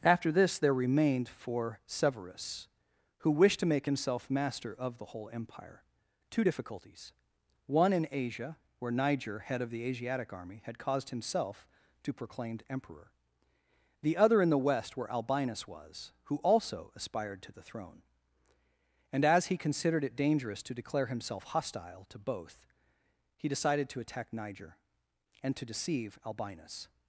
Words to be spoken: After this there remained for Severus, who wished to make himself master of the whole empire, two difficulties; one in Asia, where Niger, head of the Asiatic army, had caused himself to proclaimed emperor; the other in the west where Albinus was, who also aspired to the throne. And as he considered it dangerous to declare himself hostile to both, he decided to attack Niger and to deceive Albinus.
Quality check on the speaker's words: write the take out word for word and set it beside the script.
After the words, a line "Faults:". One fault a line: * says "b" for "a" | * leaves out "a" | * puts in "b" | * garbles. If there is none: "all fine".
After this there remained for Severus, who wished to make himself master of the whole empire, two difficulties; one in Asia, where Niger, head of the Asiatic army, had caused himself to proclaimed emperor; the other in the west where Albinus was, who also aspired to the throne. And as he considered it dangerous to declare himself hostile to both, he decided to attack Niger and to deceive Albinus.
Faults:
all fine